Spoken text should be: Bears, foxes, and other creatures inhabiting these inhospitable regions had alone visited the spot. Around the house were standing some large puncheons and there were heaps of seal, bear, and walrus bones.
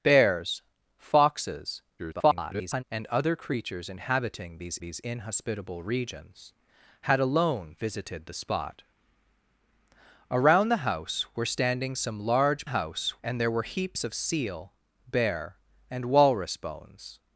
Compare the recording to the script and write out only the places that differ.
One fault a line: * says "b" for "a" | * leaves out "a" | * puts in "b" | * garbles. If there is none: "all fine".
* garbles
* puts in "these"
* says "house" for "puncheons"